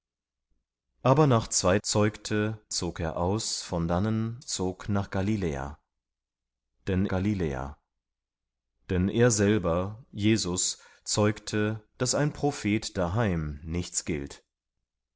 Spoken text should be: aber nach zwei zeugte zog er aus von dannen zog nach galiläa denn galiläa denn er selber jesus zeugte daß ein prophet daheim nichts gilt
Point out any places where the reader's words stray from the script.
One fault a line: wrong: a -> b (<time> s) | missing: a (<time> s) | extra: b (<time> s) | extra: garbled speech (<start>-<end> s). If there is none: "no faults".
no faults